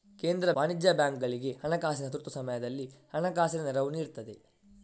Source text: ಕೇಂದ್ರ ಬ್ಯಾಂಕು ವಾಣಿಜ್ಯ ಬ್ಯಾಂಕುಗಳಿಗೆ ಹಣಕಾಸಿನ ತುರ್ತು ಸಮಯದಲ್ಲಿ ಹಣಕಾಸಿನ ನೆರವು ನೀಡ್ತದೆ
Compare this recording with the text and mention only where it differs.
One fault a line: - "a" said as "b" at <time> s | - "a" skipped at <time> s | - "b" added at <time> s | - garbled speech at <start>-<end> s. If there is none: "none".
- "ಬ್ಯಾಂಕು" skipped at 0.5 s